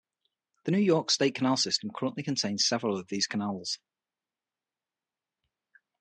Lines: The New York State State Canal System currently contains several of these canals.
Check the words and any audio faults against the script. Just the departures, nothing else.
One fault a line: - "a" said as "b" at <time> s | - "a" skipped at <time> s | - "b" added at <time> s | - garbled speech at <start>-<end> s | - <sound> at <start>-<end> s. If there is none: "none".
- "State" skipped at 1.3 s